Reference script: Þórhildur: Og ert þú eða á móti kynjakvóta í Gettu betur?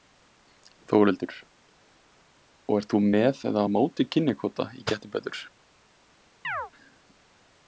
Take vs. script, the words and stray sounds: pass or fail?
fail